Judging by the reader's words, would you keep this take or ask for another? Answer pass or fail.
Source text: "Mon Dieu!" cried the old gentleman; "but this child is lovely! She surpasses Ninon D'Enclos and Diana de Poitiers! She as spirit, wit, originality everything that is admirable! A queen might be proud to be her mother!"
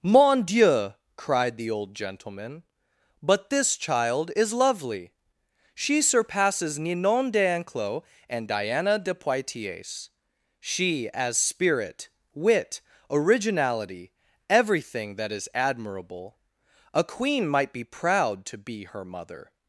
pass